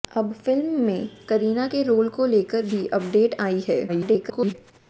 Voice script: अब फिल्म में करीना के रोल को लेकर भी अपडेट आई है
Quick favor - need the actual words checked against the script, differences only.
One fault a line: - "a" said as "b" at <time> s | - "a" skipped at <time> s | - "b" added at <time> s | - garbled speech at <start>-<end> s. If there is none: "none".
- garbled speech at 3.9-4.5 s